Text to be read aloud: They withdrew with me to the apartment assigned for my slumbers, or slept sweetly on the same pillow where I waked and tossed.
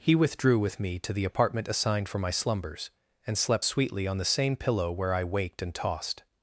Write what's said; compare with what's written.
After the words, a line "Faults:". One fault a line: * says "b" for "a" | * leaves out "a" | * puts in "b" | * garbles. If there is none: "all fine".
He withdrew with me to the apartment assigned for my slumbers, and slept sweetly on the same pillow where I waked and tossed.
Faults:
* says "He" for "They"
* says "and" for "or"